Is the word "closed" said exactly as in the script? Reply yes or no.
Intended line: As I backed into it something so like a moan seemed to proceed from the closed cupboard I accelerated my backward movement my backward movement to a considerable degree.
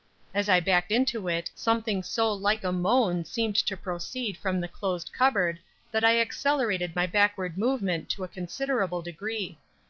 yes